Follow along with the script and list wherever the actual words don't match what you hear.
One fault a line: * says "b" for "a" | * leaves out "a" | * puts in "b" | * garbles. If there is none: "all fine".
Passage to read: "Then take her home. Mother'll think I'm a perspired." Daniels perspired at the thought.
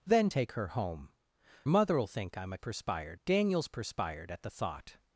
all fine